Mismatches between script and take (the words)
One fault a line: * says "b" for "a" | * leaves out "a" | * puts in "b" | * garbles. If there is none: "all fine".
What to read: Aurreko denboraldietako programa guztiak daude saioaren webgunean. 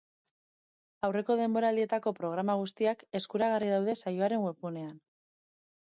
* puts in "eskuragarri"